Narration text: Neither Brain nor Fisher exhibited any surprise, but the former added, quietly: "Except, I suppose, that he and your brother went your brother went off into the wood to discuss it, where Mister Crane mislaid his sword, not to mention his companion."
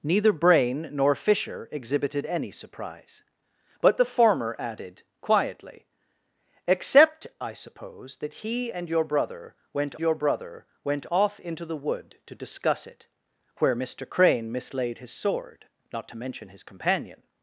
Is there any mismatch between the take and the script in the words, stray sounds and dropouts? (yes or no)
no